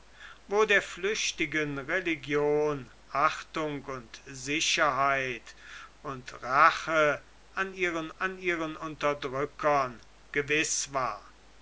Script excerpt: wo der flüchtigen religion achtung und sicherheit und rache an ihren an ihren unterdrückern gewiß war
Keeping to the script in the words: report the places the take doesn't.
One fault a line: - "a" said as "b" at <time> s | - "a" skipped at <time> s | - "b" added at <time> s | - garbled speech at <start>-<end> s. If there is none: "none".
none